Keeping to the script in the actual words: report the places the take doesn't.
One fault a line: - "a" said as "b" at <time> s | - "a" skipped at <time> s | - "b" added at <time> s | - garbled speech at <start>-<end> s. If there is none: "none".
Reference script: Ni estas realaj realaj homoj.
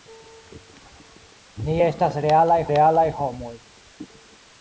none